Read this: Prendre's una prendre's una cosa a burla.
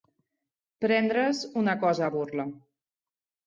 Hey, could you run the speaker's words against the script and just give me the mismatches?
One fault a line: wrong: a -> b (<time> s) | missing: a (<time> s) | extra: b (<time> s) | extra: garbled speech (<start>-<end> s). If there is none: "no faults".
missing: prendre's una (1.8 s)